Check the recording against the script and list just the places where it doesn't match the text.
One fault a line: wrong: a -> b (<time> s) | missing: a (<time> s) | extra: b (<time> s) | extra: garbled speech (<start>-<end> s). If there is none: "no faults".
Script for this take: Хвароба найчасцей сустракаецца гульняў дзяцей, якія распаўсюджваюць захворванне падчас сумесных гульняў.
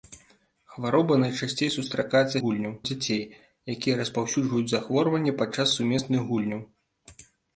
no faults